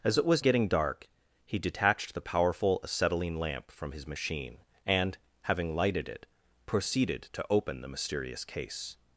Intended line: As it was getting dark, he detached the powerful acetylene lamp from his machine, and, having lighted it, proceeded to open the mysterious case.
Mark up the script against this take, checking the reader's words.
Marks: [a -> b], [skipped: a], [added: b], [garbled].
As it was getting dark, he detached the powerful acetylene lamp from his machine, and, having lighted it, proceeded to open the mysterious case.